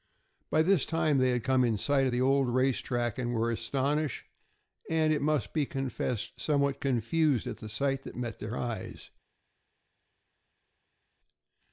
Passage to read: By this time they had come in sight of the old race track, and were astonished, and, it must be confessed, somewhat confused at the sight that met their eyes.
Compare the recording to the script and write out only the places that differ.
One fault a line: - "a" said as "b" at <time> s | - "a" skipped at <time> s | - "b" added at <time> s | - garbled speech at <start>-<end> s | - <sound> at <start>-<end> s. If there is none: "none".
none